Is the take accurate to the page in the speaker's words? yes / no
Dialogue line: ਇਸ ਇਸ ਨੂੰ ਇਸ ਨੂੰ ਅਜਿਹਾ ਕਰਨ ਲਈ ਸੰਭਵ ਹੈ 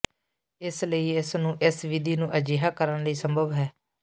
no